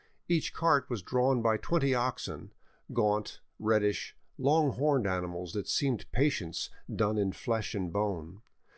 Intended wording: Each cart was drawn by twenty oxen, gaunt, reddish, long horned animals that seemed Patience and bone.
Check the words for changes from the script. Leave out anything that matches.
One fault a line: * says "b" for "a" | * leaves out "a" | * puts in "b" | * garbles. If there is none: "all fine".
* puts in "done in flesh"